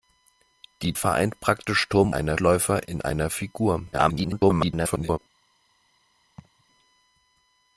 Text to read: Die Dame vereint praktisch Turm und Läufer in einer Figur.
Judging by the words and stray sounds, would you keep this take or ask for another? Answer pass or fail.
fail